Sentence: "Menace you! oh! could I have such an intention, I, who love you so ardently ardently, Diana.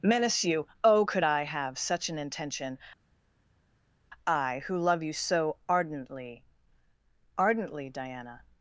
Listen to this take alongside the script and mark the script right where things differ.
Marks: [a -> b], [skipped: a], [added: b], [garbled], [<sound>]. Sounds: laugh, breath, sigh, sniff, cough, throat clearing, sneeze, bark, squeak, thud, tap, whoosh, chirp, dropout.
"Menace you! oh! could I have such an intention, I, who love you so ardently ardently, Diana.